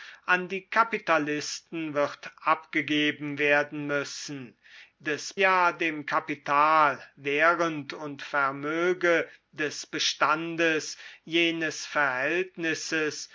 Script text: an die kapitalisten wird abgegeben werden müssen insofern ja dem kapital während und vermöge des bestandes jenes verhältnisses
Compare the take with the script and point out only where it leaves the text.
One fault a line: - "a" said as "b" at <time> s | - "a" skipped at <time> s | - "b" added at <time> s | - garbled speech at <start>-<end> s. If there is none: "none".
- "insofern" said as "des" at 5.0 s